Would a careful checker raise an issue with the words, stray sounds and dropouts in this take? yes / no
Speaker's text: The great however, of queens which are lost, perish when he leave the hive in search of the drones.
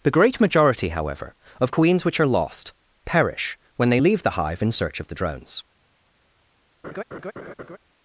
yes